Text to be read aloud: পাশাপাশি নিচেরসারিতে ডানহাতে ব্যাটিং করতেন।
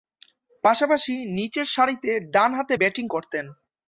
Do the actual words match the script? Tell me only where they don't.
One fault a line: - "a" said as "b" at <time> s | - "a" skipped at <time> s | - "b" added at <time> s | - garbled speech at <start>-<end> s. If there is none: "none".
none